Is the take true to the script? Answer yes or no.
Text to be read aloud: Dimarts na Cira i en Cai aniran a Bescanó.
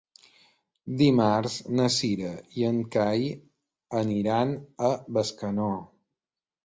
yes